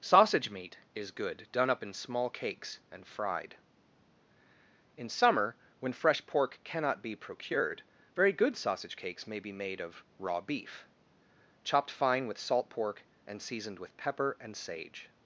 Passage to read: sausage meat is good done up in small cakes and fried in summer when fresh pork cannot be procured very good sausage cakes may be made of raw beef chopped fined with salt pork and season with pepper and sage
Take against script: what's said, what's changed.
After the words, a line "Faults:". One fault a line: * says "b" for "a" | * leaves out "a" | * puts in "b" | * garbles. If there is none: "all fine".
sausage meat is good done up in small cakes and fried in summer when fresh pork cannot be procured very good sausage cakes may be made of raw beef chopped fine with salt pork and seasoned with pepper and sage
Faults:
* says "fine" for "fined"
* says "seasoned" for "season"